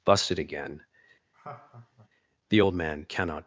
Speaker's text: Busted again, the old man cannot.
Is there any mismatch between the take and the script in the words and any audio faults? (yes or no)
yes